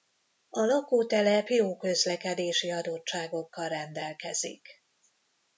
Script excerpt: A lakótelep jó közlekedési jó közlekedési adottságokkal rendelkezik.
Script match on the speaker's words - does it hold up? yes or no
no